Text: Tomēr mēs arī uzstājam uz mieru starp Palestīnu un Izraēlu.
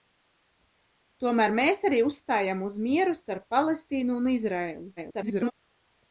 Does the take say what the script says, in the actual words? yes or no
no